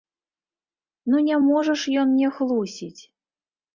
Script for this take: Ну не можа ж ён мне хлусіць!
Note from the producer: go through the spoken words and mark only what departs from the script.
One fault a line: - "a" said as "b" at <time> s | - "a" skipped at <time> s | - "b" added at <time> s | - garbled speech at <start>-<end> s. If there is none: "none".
none